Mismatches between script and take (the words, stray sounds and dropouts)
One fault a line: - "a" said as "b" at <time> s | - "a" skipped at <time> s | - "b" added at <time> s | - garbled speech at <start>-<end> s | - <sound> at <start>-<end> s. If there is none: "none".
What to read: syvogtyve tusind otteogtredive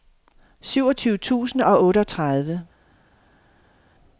- "og" added at 1.6 s